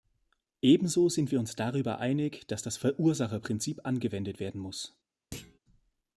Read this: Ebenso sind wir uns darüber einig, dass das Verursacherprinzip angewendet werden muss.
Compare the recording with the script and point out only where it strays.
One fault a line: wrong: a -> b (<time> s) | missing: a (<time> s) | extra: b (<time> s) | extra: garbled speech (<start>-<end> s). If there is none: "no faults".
no faults